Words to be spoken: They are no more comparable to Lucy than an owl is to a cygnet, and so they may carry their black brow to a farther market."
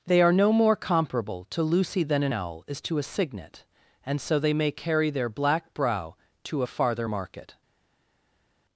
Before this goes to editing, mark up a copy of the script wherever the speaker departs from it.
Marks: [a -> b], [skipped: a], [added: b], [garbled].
They are no more comparable to Lucy than an owl is to a cygnet, and so they may carry their black brow to a farther market."